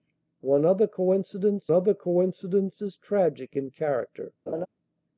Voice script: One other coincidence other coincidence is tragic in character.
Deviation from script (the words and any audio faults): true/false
true